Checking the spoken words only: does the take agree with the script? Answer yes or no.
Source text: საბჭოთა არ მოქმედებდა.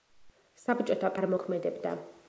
yes